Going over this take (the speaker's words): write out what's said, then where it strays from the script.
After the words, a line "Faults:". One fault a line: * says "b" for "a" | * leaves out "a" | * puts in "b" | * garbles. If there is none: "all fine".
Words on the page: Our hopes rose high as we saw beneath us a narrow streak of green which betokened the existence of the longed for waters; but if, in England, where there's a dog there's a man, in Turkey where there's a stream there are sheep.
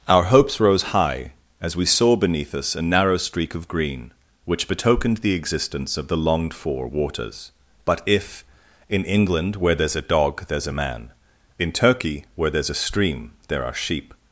Our hopes rose high as we saw beneath us a narrow streak of green which betokened the existence of the longed for waters; but if, in England, where there's a dog there's a man, in Turkey where there's a stream there are sheep.
Faults:
all fine